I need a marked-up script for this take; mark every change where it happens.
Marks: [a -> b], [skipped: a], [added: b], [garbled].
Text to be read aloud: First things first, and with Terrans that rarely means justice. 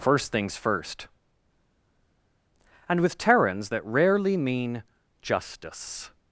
First things first, and with Terrans that rarely [means -> mean] justice.